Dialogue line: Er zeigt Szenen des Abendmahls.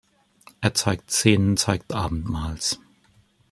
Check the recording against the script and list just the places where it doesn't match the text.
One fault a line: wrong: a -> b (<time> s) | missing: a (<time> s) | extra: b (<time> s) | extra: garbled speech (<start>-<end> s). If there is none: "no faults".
wrong: des -> zeigt (1.5 s)